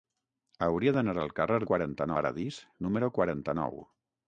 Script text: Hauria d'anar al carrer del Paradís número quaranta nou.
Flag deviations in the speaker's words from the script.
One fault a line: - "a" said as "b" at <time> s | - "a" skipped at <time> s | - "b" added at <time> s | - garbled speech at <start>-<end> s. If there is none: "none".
- "del" said as "quaranta" at 1.7 s